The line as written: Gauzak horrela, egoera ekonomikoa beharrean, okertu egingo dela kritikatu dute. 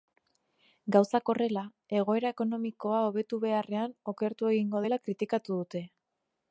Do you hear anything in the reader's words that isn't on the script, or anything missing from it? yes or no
yes